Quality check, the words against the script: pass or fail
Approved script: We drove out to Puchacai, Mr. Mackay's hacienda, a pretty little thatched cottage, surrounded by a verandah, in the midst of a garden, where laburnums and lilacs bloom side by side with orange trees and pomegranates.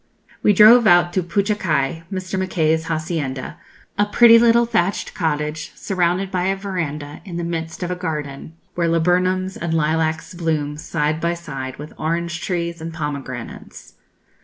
pass